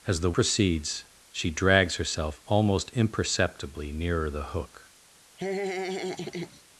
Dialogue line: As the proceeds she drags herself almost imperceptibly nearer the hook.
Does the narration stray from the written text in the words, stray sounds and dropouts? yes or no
yes